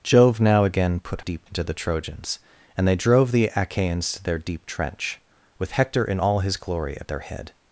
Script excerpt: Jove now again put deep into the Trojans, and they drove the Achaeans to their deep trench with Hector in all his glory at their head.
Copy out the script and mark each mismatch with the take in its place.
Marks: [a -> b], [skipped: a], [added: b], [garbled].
Jove now again put deep into the Trojans, and they drove the Achaeans to their deep trench with Hector in all his glory at their head.